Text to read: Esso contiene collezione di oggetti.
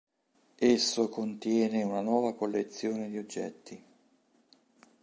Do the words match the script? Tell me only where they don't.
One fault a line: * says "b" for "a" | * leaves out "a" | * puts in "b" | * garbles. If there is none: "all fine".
* puts in "una nuova"